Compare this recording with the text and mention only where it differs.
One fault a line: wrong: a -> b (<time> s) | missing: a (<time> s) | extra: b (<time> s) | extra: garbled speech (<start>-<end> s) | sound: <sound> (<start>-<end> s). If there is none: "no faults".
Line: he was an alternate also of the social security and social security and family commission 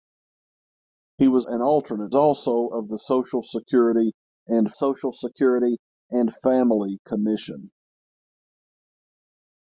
no faults